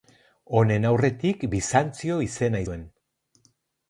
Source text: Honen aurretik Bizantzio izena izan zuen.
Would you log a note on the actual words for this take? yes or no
yes